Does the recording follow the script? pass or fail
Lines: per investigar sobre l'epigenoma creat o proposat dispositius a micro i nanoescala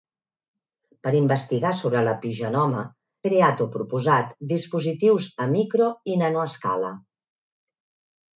pass